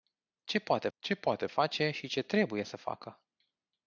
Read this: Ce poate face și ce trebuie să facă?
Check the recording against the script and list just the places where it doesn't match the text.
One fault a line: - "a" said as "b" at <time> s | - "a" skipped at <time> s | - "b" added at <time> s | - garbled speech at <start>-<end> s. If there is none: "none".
- "ce poate" added at 1.0 s